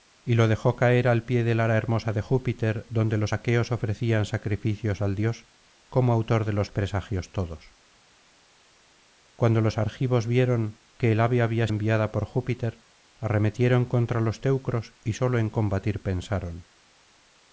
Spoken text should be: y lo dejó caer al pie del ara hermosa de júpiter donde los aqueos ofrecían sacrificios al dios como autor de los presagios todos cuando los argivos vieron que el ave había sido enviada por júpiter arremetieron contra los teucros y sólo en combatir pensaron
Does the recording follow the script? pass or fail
fail